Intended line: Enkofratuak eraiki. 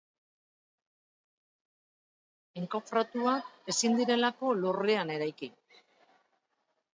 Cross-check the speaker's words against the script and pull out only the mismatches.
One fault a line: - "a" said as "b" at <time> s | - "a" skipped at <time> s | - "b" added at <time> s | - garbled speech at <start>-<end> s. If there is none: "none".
- "ezin direlako lurrean" added at 3.8 s